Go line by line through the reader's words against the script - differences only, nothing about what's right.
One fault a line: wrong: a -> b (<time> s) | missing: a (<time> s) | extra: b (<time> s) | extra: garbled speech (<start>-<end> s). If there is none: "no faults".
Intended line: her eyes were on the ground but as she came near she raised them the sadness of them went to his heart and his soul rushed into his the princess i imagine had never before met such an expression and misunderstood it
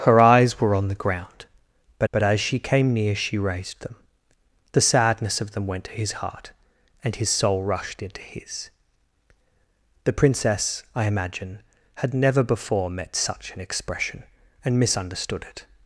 extra: but (2.1 s)